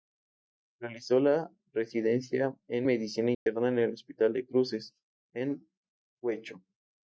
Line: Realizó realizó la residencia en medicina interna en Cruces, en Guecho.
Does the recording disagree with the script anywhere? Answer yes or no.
yes